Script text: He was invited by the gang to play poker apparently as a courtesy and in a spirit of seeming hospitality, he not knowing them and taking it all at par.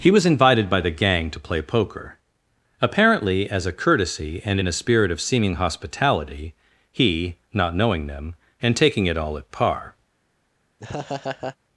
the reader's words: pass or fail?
pass